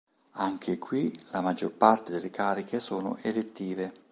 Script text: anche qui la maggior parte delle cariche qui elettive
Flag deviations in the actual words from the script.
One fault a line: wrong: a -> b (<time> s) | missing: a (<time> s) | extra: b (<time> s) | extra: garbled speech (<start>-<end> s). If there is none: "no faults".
wrong: qui -> sono (2.8 s)